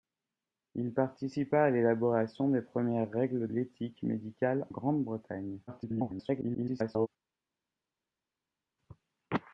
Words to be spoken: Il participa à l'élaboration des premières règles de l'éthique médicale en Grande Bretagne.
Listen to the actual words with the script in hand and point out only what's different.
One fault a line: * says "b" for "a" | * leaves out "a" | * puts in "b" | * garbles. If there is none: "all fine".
* leaves out "de"
* leaves out "en"
* garbles